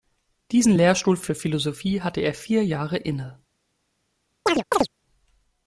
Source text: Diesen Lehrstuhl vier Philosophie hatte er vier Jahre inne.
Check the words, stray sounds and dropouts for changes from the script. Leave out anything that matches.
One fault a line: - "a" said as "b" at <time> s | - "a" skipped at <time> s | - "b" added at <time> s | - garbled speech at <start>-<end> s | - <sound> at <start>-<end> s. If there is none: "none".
- "vier" said as "für" at 1.2 s
- chirp at 4.5-4.9 s